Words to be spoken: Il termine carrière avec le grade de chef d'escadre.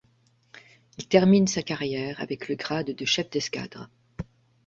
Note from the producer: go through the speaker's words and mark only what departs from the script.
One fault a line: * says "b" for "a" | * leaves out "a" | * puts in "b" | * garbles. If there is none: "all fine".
* puts in "sa"